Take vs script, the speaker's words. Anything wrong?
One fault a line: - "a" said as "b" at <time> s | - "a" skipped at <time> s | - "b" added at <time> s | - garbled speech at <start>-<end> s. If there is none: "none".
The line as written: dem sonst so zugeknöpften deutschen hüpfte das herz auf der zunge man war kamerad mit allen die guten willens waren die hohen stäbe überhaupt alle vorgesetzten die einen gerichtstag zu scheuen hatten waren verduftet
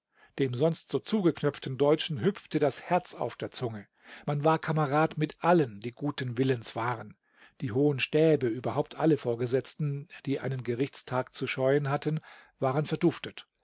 none